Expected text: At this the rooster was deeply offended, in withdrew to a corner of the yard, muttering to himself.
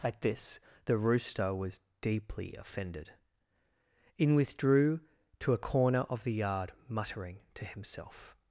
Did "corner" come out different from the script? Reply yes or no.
no